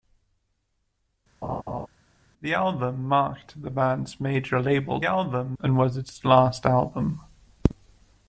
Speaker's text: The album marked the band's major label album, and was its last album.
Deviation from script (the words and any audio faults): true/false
true